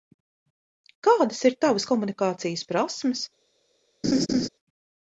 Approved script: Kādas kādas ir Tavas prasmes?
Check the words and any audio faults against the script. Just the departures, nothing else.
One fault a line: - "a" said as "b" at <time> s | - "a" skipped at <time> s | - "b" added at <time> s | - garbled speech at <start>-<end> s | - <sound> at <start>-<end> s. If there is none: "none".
- "kādas" skipped at 1.4 s
- "komunikācijas" added at 1.9 s
- laugh at 4.0-4.5 s